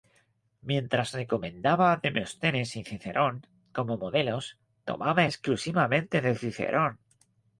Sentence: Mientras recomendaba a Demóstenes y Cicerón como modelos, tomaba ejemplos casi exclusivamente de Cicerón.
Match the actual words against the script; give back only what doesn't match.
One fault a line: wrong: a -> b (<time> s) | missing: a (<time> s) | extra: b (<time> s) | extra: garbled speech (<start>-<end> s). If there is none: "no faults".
missing: ejemplos casi (5.2 s)